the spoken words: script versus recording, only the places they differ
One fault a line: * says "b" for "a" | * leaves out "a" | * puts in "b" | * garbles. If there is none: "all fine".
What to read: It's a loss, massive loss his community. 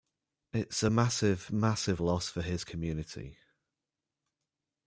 * says "massive" for "loss"
* puts in "for"